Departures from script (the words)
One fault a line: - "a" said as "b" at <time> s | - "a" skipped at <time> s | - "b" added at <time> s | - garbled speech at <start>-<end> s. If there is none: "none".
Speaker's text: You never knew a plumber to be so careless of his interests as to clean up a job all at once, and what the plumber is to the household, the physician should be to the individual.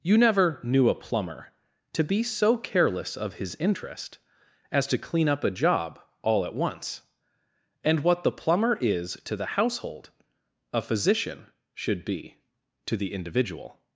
- "interests" said as "interest" at 3.5 s
- "the" said as "a" at 10.7 s